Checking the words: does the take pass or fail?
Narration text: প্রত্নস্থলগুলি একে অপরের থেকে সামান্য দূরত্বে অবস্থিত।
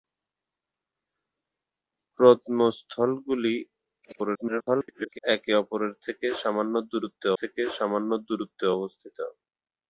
fail